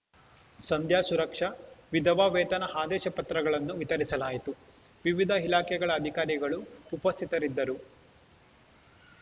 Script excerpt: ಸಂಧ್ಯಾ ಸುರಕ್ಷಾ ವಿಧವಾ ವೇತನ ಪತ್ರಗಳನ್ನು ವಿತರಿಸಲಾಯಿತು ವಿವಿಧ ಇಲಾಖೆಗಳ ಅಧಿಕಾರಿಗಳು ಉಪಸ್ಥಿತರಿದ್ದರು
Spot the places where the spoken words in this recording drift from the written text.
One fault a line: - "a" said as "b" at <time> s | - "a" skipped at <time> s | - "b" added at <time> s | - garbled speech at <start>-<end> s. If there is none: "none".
- "ಆದೇಶ" added at 2.8 s